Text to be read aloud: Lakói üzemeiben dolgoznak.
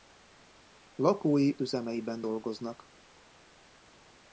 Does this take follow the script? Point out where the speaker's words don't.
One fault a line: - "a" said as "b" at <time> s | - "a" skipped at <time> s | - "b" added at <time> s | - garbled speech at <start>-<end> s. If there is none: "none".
none